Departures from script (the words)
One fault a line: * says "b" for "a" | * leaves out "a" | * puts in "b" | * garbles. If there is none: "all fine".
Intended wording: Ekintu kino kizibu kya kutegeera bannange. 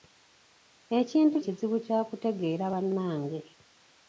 * leaves out "kino"